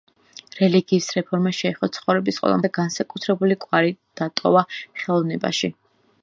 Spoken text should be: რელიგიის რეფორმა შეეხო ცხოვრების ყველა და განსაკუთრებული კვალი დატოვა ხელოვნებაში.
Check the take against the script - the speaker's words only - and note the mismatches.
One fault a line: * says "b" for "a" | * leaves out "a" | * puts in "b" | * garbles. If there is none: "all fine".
all fine